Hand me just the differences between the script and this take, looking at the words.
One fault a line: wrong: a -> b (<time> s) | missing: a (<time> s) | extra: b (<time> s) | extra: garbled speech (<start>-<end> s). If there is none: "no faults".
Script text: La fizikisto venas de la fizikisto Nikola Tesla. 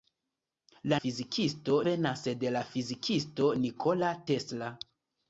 no faults